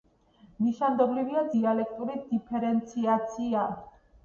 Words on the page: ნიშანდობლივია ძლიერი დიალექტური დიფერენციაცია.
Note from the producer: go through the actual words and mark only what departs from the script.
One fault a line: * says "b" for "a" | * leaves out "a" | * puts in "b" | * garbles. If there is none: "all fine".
* leaves out "ძლიერი"